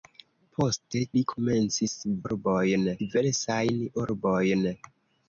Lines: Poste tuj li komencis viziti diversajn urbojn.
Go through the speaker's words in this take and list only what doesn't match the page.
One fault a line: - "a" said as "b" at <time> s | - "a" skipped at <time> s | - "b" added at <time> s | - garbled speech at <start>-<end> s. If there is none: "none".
- "tuj" skipped at 1.0 s
- "viziti" said as "urbojn" at 2.3 s